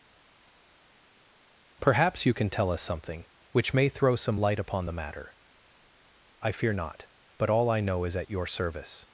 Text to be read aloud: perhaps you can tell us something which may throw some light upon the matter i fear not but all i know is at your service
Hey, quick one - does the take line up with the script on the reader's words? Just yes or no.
yes